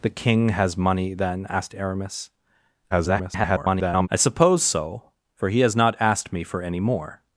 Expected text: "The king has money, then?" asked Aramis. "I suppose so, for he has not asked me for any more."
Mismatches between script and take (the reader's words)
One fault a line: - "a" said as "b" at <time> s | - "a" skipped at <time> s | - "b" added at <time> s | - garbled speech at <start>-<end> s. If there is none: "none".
- garbled speech at 2.9-4.1 s